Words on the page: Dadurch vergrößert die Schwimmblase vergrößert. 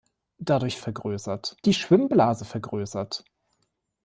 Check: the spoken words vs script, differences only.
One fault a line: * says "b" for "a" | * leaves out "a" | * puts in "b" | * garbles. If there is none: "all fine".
all fine